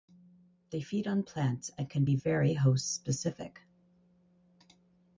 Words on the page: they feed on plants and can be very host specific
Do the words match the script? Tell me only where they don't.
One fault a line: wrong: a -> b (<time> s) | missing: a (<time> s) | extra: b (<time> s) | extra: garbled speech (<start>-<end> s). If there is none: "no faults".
no faults